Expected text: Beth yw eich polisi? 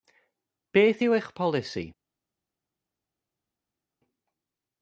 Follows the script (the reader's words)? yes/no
yes